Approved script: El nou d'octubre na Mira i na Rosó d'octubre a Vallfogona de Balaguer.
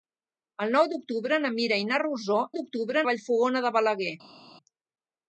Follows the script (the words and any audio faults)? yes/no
yes